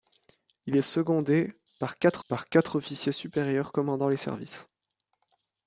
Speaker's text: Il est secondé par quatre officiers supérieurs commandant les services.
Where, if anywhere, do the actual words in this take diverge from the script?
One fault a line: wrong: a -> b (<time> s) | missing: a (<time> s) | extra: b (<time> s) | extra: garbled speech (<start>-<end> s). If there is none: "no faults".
extra: par quatre (2.3 s)